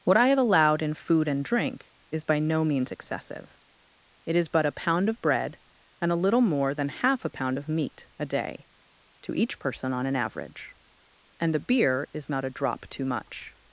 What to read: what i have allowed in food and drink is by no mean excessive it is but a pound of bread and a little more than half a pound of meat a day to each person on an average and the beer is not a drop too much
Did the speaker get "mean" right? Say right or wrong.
wrong